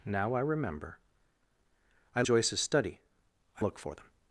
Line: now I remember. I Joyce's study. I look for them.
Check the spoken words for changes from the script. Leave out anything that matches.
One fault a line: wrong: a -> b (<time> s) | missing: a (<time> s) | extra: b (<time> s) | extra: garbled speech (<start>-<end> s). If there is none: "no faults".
no faults